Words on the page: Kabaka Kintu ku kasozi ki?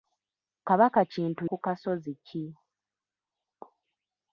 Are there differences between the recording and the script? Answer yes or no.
no